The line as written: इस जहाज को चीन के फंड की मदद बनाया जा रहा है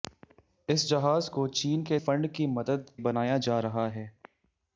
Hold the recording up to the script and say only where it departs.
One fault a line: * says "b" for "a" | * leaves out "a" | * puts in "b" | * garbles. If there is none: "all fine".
all fine